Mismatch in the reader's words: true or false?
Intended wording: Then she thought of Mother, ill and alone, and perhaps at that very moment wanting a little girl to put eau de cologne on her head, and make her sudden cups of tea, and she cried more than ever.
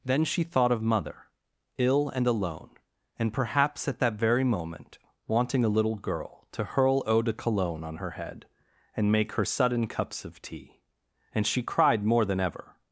true